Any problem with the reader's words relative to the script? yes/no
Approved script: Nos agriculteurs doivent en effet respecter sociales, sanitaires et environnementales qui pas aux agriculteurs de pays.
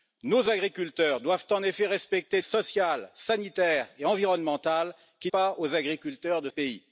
no